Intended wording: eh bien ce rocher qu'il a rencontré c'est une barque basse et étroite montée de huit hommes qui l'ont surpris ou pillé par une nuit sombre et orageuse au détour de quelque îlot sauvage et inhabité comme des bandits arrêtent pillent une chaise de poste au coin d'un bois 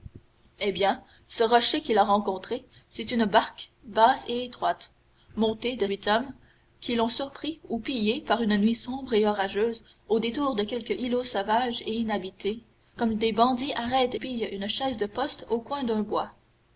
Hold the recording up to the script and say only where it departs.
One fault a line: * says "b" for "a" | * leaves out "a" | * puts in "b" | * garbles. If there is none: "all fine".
all fine